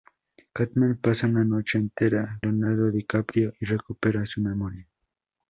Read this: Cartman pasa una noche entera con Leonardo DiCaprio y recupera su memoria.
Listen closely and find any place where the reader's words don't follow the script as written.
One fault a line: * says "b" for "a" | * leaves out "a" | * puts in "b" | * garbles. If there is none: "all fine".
* leaves out "con"